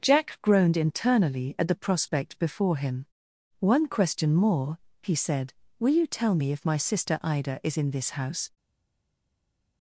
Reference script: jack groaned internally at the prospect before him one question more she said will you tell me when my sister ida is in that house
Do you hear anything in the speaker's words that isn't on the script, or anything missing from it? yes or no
yes